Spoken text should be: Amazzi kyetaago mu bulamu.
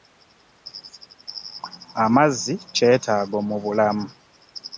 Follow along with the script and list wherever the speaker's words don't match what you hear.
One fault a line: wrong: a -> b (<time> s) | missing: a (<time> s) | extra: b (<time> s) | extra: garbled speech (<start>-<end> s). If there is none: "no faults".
no faults